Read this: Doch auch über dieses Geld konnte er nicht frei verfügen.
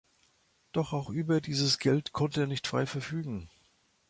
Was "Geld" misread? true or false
false